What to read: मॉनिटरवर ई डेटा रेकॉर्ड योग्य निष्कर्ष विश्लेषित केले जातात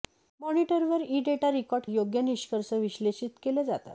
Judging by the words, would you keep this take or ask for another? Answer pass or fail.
pass